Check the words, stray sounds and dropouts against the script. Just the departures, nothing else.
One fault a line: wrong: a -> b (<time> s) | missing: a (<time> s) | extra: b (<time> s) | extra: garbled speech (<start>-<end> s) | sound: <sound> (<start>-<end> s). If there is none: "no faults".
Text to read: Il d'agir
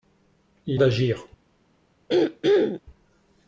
sound: throat clearing (2.1-2.8 s)